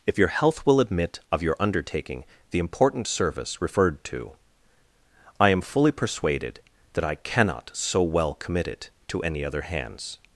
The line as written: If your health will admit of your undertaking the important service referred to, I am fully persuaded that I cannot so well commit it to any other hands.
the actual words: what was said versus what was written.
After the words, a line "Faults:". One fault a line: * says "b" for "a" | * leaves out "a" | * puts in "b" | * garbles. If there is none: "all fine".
If your health will admit of your undertaking the important service referred to, I am fully persuaded that I cannot so well commit it to any other hands.
Faults:
all fine